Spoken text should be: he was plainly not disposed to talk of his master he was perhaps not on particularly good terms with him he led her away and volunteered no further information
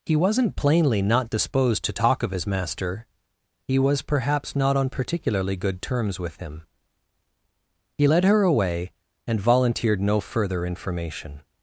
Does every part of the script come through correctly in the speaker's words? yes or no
no